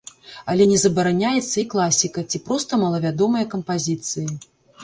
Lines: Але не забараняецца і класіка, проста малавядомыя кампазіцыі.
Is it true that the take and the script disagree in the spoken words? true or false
true